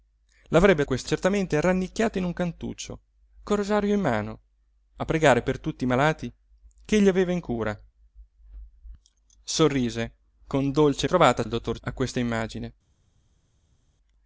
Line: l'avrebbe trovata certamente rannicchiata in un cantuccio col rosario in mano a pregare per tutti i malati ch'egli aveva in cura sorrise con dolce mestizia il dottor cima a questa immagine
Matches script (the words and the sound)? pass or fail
fail